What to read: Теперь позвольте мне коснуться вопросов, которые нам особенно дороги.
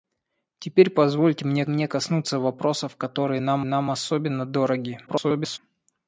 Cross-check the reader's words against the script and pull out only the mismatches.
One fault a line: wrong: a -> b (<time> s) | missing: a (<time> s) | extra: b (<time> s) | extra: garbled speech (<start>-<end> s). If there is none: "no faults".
extra: мне (1.7 s)
extra: нам (3.6 s)
extra: garbled speech (5.1-5.6 s)